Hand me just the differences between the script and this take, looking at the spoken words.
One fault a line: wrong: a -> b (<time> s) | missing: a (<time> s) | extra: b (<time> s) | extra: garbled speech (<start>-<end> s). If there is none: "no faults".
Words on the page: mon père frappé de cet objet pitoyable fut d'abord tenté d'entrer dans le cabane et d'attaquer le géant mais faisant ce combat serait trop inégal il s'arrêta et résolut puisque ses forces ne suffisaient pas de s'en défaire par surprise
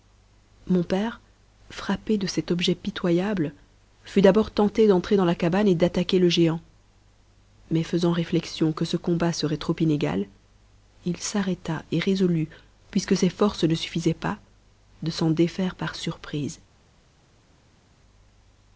wrong: le -> la (5.3 s)
extra: réflexion que (8.1 s)